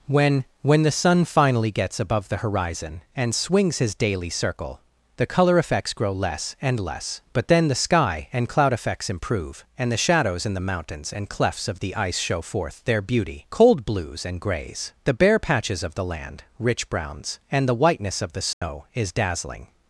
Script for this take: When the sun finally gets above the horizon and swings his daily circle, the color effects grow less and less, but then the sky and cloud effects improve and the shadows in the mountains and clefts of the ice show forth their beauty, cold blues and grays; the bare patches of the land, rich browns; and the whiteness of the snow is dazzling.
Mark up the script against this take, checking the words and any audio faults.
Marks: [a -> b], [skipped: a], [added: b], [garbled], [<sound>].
When [added: when] the sun finally gets above the horizon and swings his daily circle, the color effects grow less and less, but then the sky and cloud effects improve and the shadows in the mountains and clefts of the ice show forth their beauty, cold blues and grays; the bare patches of the land, rich browns; and the whiteness of the snow [dropout] is dazzling.